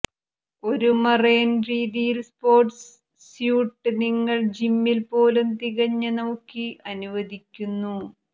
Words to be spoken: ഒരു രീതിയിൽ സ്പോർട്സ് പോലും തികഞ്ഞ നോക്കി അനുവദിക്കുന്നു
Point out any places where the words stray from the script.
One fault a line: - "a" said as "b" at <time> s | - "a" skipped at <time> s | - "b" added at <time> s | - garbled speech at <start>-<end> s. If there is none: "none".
- "മറൈൻ" added at 1.0 s
- "സ്യൂട്ട് നിങ്ങൾ ജിമ്മിൽ" added at 3.2 s